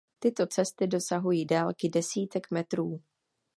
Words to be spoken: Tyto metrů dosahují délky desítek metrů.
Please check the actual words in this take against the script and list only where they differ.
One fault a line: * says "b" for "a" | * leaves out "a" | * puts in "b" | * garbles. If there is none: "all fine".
* says "cesty" for "metrů"